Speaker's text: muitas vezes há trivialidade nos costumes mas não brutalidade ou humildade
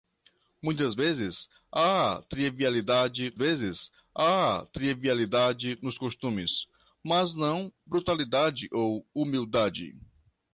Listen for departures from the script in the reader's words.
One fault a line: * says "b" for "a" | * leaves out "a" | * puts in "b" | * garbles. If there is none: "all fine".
* puts in "vezes há trivialidade"